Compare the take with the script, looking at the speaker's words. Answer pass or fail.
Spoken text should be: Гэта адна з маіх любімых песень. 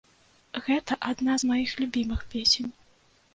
pass